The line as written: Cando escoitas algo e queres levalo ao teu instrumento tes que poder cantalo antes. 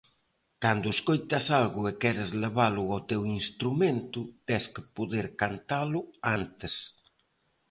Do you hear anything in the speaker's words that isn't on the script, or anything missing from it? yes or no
no